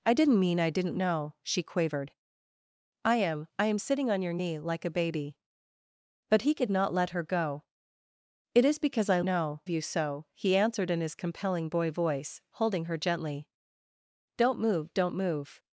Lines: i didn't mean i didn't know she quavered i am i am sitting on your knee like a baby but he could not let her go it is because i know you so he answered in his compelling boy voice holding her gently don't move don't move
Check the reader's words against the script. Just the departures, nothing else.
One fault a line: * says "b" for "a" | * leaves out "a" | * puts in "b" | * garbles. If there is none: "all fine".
all fine